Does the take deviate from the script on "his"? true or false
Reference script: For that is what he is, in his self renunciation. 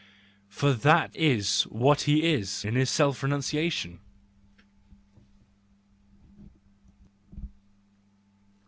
false